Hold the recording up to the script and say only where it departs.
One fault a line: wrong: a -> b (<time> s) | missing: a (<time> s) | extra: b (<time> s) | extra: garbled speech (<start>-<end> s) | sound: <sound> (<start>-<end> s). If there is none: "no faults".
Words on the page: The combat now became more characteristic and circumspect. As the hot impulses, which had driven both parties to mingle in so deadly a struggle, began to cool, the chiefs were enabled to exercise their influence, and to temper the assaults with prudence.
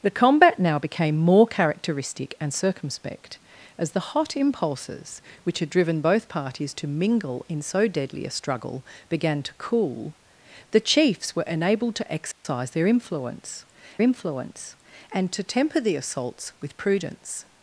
sound: dropout (12.3-12.4 s)
extra: influence (14.0 s)